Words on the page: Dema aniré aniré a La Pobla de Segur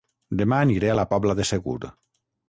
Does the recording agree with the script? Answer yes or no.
no